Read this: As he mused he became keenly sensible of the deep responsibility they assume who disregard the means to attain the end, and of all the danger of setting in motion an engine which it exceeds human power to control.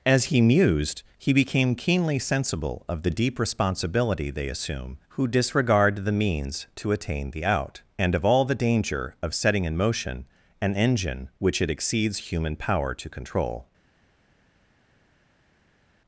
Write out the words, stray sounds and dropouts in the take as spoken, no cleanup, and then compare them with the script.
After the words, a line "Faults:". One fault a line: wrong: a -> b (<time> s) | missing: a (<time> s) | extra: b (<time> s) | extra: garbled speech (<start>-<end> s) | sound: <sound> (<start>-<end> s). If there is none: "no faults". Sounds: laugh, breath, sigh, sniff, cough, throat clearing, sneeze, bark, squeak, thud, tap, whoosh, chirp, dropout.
As he mused he became keenly sensible of the deep responsibility they assume who disregard the means to attain the out, and of all the danger of setting in motion an engine which it exceeds human power to control.
Faults:
wrong: end -> out (7.5 s)